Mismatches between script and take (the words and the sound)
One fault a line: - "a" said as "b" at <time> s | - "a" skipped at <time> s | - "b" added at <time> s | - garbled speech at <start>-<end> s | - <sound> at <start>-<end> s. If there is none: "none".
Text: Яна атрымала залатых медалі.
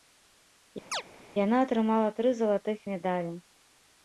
- chirp at 0.9-1.0 s
- "тры" added at 2.2 s